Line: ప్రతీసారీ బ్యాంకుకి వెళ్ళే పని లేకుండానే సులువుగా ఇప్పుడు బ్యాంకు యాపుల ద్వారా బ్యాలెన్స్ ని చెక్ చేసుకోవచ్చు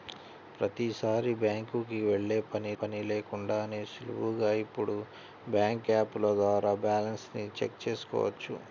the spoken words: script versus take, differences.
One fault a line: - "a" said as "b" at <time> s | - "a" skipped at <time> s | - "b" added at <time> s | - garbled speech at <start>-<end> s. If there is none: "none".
- "పని" added at 2.8 s